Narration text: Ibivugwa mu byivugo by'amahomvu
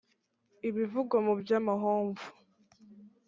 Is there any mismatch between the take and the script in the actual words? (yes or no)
yes